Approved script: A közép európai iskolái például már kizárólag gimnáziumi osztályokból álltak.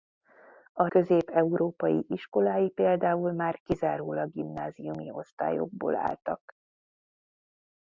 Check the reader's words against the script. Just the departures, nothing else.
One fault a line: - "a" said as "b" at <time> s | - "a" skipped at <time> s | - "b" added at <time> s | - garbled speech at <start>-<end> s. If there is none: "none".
none